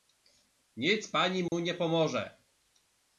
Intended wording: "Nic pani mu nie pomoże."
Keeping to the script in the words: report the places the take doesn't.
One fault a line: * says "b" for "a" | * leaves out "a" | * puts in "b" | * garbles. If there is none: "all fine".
all fine